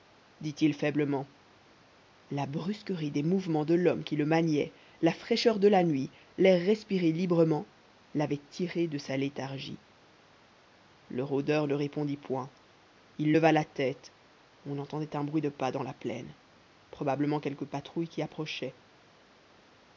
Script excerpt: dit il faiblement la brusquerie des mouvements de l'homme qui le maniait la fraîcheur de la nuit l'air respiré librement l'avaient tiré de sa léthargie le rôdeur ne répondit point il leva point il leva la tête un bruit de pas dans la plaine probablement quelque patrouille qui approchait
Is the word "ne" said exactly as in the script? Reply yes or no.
yes